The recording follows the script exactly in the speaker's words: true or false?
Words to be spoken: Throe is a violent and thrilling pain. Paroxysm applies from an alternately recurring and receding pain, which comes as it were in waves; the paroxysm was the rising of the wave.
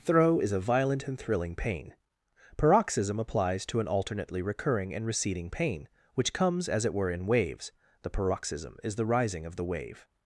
false